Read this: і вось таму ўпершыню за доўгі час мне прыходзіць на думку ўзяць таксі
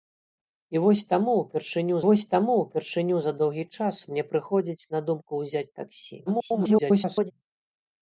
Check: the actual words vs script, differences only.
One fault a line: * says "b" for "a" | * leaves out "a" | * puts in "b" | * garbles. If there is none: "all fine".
* puts in "вось таму ўпершыню"
* garbles